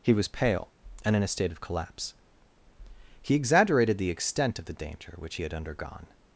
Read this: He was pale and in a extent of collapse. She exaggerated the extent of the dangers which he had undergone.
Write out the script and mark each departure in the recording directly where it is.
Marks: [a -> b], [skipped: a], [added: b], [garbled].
He was pale and in a [extent -> state] of collapse. [She -> He] exaggerated the extent of the [dangers -> danger] which he had undergone.